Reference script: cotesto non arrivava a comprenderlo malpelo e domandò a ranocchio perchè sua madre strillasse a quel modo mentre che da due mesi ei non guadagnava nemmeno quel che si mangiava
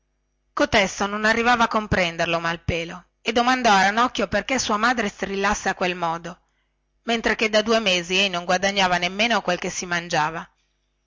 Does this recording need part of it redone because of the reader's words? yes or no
no